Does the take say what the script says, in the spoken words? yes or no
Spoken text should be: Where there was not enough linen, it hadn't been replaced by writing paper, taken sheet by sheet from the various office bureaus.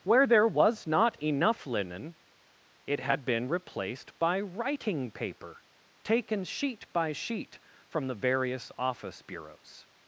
no